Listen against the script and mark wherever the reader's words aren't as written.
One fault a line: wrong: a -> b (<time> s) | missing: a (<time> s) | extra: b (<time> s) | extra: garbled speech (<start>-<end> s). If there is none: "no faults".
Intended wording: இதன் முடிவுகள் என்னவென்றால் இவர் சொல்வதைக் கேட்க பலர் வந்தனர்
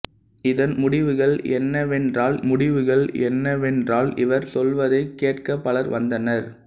extra: முடிவுகள் என்னவென்றால் (2.4 s)